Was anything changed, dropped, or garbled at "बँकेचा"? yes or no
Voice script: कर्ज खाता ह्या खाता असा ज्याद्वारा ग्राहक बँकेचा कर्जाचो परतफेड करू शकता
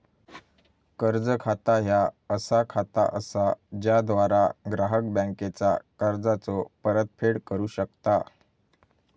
no